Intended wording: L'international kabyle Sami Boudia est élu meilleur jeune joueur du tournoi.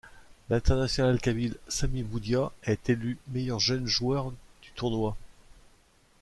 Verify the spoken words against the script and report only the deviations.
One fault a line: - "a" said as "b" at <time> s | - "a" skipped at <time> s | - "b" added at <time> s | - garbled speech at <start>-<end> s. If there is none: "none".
none